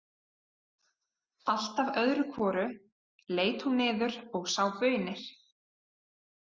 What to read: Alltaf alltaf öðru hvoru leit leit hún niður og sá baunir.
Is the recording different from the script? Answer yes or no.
yes